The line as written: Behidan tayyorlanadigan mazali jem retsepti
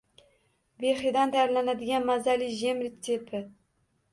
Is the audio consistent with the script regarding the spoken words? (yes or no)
yes